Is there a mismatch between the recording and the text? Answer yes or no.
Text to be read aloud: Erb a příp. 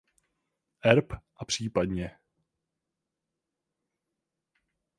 no